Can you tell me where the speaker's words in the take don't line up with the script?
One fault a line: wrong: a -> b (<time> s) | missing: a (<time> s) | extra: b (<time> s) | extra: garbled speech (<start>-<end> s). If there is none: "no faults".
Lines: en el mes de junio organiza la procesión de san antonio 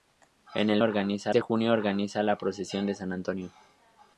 wrong: mes -> organiza (0.8 s)